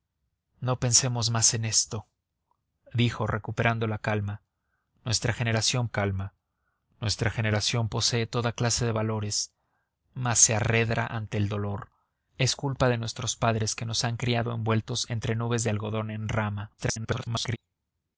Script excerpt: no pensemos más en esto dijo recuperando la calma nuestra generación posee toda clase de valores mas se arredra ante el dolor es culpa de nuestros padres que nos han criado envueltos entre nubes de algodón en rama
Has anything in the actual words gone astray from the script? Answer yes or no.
yes